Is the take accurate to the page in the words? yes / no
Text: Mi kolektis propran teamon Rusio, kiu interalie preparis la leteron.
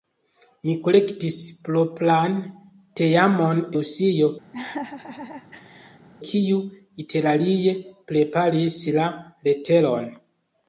yes